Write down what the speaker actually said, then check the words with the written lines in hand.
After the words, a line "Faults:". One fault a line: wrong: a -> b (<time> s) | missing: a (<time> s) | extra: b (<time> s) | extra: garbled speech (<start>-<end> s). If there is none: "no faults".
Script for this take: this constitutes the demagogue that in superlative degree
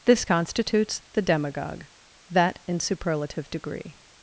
this constitutes the demagogue that in superlative degree
Faults:
no faults